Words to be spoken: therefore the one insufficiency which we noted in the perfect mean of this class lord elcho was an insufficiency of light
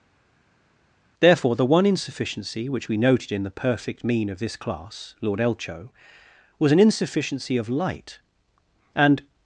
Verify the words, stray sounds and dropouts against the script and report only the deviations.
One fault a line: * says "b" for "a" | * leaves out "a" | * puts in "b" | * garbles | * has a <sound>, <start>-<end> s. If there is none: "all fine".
* puts in "and"